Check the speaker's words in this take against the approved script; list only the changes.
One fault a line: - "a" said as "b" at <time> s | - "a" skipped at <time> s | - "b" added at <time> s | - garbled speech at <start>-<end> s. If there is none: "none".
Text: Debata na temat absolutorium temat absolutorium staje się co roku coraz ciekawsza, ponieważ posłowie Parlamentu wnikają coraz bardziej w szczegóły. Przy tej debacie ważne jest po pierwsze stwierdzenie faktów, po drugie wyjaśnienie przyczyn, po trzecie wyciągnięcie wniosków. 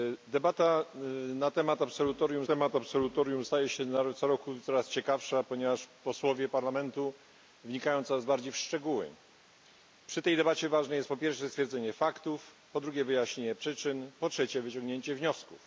none